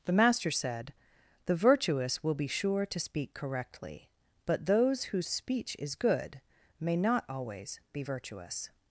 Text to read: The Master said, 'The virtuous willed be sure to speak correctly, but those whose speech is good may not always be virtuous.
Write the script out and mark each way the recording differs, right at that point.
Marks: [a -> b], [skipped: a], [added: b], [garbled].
The Master said, 'The virtuous [willed -> will] be sure to speak correctly, but those whose speech is good may not always be virtuous.